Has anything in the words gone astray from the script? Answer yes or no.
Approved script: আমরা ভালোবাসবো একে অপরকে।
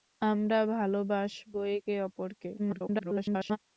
yes